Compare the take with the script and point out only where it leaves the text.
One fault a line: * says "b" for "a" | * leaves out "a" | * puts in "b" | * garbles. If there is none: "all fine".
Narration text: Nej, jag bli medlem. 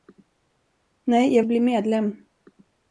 all fine